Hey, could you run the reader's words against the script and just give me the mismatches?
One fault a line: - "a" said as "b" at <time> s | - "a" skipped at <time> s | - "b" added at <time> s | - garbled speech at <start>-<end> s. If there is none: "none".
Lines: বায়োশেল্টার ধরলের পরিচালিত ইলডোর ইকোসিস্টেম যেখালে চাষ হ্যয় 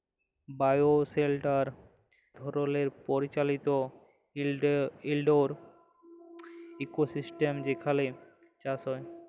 none